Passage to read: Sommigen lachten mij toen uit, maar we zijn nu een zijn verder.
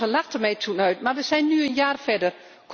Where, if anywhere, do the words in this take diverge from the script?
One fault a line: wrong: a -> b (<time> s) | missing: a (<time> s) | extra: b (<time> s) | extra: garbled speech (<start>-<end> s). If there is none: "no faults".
wrong: zijn -> jaar (1.7 s)